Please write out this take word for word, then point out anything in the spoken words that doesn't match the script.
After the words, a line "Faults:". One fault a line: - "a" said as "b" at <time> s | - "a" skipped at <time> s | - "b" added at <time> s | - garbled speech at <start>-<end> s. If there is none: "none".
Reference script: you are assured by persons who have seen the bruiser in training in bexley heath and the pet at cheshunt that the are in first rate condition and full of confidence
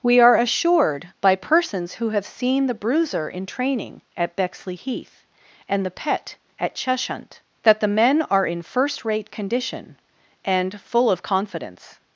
we are assured by persons who have seen the bruiser in training at bexley heath and the pet at cheshunt that the men are in first rate condition and full of confidence
Faults:
- "you" said as "we" at 0.0 s
- "in" said as "at" at 4.2 s
- "men" added at 7.9 s